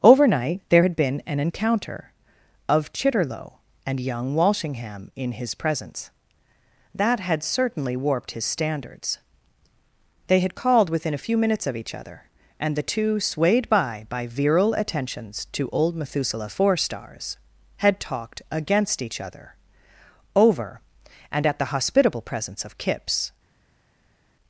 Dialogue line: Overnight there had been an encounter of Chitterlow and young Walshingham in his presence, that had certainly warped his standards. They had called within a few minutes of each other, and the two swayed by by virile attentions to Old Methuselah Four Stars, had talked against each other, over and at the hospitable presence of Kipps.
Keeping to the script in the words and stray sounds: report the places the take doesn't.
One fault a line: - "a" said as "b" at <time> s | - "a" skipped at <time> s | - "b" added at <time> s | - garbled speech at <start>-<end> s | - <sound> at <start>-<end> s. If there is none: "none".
none